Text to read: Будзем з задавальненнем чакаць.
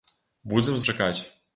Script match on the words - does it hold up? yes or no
no